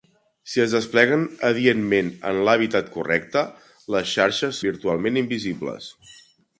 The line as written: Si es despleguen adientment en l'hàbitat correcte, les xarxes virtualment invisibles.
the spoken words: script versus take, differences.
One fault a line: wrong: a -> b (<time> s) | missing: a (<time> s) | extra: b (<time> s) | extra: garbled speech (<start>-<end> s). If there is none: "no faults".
no faults